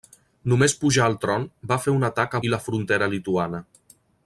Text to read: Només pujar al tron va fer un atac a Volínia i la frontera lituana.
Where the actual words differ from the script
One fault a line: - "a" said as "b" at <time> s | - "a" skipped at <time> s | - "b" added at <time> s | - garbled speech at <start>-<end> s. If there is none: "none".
- "Volínia" skipped at 2.4 s